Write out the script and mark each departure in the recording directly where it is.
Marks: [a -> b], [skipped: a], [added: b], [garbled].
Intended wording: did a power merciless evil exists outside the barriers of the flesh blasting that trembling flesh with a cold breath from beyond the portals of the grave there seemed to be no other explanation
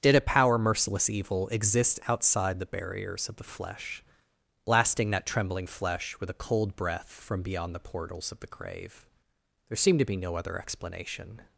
did a power merciless evil [exists -> exist] outside the barriers of the flesh blasting that trembling flesh with a cold breath from beyond the portals of the grave there seemed to be no other explanation